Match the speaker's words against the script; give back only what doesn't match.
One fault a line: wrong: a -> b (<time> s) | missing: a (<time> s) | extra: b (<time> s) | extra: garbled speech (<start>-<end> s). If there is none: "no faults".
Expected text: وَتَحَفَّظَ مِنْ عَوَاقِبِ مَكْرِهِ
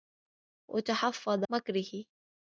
missing: مِنْ عَوَاقِبِ (1.4 s)